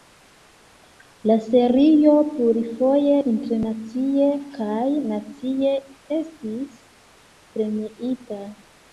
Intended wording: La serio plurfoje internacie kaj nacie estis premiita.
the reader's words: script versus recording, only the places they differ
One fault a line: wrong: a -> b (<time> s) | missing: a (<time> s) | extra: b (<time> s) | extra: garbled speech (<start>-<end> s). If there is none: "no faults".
no faults